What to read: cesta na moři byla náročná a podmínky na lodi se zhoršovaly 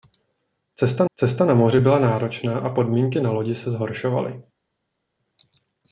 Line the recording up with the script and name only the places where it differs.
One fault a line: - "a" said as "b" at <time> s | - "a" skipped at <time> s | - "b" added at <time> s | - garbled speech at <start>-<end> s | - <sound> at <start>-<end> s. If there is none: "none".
- "cesta" added at 1.2 s